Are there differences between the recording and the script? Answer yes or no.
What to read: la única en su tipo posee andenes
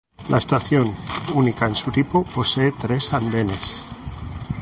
yes